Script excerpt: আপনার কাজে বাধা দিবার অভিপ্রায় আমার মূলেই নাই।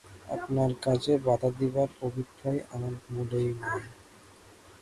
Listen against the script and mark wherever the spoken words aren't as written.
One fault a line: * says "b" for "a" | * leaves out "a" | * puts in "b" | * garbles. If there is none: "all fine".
all fine